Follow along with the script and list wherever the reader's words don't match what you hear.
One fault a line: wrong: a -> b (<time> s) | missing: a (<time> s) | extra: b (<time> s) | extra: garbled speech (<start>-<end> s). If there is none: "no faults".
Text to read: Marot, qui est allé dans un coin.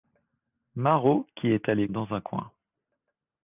no faults